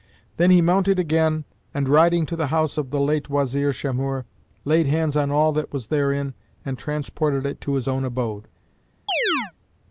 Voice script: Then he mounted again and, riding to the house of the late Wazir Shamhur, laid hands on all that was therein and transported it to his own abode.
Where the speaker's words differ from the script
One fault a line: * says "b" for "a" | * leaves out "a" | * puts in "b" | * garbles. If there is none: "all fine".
all fine